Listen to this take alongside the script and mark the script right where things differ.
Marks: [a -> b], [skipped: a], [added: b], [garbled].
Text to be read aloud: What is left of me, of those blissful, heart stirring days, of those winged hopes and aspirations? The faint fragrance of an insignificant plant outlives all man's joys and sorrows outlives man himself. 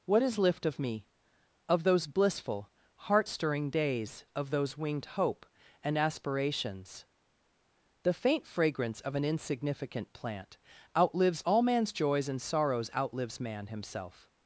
What is [left -> lift] of me, of those blissful, heart stirring days, of those winged [hopes -> hope] and aspirations? The faint fragrance of an insignificant plant outlives all man's joys and sorrows outlives man himself.